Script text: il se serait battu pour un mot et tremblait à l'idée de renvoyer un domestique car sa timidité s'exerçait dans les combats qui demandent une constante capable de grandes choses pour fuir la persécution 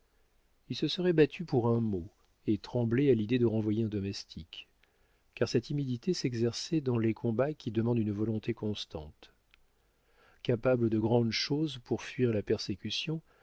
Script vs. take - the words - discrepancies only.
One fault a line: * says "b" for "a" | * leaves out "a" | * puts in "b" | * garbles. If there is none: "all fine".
* puts in "volonté"